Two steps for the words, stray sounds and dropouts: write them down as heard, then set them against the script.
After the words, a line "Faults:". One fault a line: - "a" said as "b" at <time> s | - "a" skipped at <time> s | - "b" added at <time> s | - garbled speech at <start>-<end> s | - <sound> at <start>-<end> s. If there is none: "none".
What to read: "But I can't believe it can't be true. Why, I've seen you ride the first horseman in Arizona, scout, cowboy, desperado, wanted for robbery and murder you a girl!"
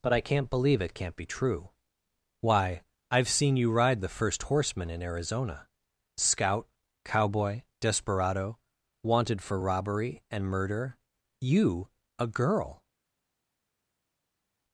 "But I can't believe it can't be true. Why, I've seen you ride the first horseman in Arizona, scout, cowboy, desperado, wanted for robbery and murder you a girl!"
Faults:
none